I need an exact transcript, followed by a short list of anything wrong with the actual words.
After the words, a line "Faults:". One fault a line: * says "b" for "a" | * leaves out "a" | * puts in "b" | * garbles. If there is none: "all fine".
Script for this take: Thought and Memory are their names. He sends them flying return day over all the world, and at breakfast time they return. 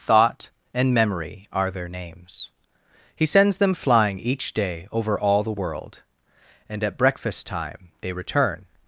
Thought and Memory are their names. He sends them flying each day over all the world, and at breakfast time they return.
Faults:
* says "each" for "return"